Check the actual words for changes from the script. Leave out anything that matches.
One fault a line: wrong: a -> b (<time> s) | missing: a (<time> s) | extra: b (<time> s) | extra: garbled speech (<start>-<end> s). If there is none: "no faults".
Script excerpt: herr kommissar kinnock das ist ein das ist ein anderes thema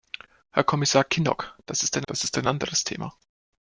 no faults